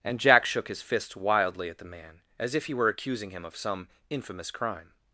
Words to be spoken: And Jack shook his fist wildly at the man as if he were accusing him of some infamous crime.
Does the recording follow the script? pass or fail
pass